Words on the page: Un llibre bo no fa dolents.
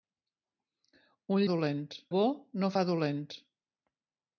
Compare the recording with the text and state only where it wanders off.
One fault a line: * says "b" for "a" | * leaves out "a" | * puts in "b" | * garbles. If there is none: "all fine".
* says "dolents" for "llibre"